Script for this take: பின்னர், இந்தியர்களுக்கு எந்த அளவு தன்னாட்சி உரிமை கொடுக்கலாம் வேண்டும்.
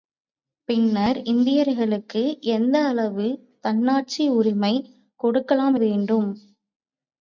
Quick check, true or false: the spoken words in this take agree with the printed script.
true